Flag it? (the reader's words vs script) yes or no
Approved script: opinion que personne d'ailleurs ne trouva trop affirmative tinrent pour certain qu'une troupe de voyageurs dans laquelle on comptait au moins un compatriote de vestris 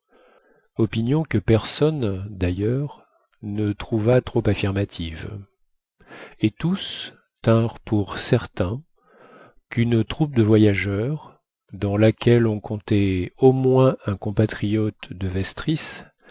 yes